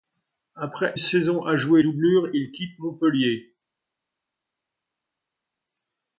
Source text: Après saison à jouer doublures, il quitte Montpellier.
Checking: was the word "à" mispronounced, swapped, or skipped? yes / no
no